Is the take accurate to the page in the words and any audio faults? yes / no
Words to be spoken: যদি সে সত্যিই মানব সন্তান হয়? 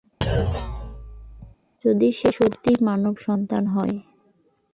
no